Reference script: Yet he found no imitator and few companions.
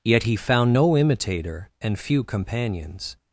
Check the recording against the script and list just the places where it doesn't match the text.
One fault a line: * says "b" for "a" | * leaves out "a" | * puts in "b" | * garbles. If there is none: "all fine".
all fine